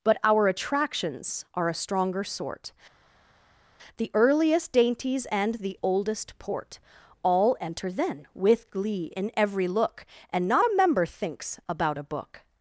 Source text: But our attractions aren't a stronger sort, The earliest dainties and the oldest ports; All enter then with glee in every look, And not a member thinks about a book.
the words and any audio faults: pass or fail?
fail